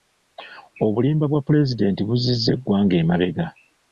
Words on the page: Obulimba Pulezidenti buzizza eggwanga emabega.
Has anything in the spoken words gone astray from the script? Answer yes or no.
yes